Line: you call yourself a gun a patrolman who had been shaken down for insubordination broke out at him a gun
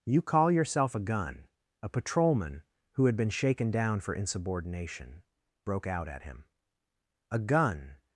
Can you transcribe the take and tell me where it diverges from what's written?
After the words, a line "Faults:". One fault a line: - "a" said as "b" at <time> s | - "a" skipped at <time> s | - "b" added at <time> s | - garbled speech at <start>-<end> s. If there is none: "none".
you call yourself a gun a patrolman who had been shaken down for insubordination broke out at him a gun
Faults:
none